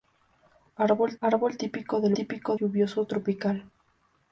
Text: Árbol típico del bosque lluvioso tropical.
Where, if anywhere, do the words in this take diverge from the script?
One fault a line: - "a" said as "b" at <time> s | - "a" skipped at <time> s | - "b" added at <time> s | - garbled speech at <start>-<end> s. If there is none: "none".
- "árbol" added at 1.2 s
- "bosque" said as "típico" at 2.1 s